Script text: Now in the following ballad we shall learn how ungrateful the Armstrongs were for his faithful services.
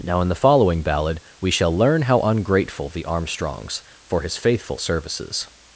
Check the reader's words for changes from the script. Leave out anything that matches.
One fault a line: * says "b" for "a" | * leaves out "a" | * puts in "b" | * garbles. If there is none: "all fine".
* leaves out "were"